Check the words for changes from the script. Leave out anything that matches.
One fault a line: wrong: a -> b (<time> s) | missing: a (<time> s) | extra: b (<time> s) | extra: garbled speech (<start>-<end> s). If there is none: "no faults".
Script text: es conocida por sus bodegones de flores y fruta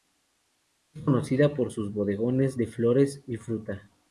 no faults